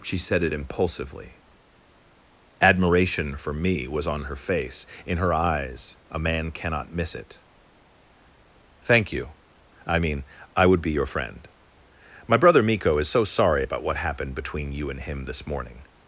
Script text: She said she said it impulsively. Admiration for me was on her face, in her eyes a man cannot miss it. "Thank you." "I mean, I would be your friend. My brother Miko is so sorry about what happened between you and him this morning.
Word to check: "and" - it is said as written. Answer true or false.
true